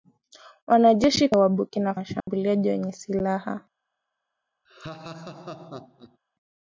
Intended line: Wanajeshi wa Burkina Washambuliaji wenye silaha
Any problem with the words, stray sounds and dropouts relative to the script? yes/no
yes